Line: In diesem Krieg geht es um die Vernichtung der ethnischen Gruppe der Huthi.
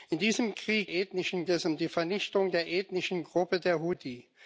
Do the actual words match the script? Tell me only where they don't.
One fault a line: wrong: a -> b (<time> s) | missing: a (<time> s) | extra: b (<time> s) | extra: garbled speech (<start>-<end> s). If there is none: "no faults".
wrong: geht -> ethnischen (0.9 s)